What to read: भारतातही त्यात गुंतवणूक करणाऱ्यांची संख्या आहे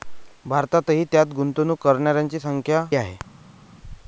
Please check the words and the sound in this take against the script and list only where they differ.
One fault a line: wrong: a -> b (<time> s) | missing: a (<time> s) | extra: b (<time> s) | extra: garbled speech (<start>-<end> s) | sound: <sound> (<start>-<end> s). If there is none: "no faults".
no faults